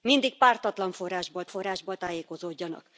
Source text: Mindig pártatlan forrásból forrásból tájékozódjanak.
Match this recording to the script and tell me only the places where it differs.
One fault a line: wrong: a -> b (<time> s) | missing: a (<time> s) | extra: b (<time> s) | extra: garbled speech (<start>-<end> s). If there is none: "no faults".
no faults